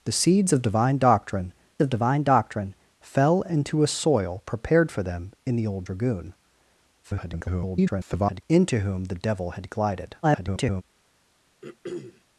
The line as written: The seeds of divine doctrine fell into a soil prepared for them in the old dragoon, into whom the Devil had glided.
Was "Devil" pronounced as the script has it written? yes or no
yes